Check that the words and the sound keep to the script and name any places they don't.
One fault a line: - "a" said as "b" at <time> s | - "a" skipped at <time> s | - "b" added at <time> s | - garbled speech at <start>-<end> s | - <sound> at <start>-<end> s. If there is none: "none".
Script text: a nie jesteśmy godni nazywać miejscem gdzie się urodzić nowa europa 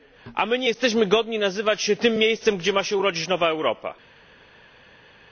- "my" added at 0.5 s
- "się tym" added at 1.8 s
- "ma" added at 2.7 s